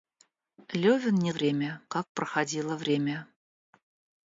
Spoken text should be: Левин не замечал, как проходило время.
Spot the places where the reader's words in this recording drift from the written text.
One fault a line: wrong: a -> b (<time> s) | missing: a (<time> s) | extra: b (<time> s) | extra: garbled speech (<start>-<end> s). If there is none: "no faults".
wrong: замечал -> время (1.3 s)